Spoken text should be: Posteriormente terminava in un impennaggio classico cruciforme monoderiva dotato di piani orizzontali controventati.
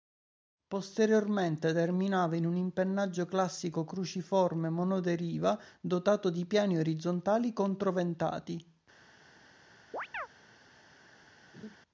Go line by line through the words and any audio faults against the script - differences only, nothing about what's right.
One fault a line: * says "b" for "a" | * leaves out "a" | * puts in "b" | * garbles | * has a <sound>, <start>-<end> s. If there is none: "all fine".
* has a chirp, 9.9-10.3 s
* has a laugh, 11.5-11.8 s